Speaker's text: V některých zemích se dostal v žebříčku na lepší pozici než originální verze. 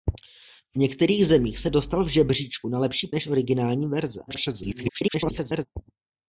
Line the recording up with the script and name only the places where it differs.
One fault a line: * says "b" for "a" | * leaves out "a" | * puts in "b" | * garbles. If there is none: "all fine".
* leaves out "pozici"
* garbles